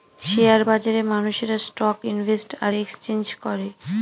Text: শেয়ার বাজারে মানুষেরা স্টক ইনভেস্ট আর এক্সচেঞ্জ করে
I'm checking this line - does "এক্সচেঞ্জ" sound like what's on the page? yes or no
yes